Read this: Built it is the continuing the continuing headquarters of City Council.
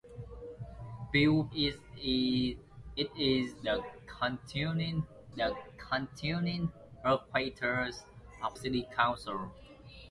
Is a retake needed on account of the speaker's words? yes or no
no